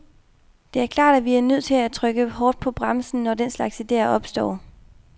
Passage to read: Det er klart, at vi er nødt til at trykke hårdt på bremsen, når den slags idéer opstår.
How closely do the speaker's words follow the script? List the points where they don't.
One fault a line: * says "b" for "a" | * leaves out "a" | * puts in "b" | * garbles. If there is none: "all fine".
all fine